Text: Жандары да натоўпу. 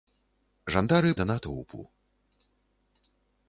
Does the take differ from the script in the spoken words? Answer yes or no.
no